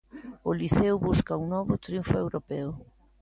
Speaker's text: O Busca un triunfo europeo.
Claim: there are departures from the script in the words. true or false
true